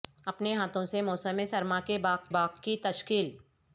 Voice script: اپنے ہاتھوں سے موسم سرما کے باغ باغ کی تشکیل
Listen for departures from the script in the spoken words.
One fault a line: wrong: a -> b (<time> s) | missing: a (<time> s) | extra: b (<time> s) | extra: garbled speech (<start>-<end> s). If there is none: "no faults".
no faults